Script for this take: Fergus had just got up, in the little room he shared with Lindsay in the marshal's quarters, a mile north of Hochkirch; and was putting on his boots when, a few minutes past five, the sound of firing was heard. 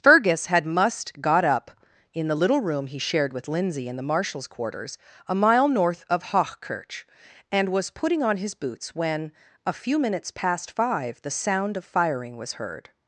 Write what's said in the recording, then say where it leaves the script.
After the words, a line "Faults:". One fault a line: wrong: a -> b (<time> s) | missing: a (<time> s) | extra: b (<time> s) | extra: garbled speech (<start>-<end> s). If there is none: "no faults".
Fergus had must got up, in the little room he shared with Lindsay in the marshal's quarters, a mile north of Hochkirch; and was putting on his boots when, a few minutes past five, the sound of firing was heard.
Faults:
wrong: just -> must (0.7 s)